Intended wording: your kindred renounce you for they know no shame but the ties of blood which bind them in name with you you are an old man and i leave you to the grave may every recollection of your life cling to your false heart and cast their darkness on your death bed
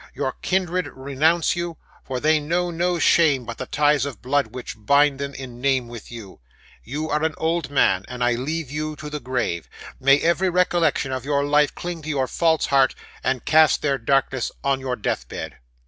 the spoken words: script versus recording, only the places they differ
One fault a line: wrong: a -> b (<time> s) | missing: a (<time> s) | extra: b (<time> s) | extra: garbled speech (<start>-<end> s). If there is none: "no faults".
no faults